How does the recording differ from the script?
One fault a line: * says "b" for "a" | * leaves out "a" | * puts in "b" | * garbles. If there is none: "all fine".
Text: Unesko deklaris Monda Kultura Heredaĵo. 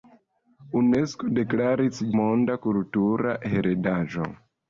all fine